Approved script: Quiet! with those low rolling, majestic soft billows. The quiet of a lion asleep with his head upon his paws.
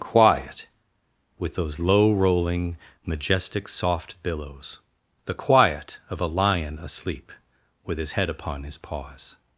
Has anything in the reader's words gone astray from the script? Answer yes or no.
no